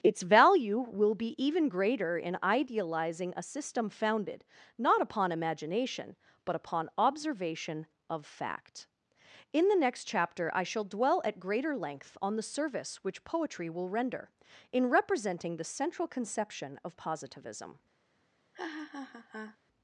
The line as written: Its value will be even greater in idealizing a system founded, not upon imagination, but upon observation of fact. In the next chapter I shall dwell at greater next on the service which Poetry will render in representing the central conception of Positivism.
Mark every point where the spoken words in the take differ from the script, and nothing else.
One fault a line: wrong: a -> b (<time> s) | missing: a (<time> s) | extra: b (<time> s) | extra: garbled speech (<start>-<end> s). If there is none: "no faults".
wrong: next -> length (11.8 s)